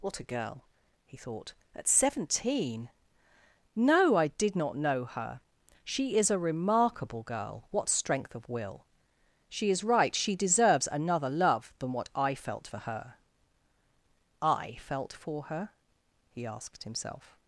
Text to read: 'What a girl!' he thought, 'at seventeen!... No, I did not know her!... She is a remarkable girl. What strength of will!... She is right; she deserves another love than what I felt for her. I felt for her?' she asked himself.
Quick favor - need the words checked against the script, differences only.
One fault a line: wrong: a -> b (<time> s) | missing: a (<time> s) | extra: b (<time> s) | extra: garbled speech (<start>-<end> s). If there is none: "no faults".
wrong: she -> he (16.3 s)